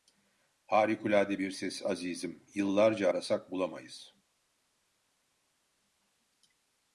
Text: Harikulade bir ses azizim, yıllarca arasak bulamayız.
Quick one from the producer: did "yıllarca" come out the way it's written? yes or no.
yes